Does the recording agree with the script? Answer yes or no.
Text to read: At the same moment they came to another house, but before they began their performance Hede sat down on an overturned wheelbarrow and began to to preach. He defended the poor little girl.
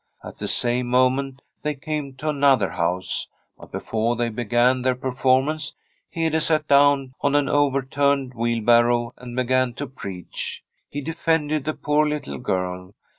no